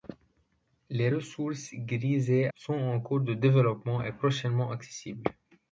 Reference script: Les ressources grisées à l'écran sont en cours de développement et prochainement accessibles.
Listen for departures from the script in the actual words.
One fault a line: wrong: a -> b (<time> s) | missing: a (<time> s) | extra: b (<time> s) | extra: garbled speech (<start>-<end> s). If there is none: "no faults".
missing: à l'écran (2.5 s)